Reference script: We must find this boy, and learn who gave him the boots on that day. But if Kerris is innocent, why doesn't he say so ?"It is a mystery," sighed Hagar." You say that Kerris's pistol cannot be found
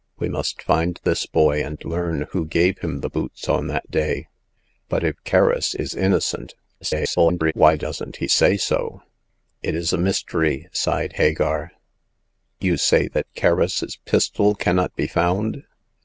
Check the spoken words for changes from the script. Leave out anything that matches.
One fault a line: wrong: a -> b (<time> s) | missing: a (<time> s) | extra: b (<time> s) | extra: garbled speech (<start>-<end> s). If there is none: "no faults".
extra: garbled speech (6.8-7.5 s)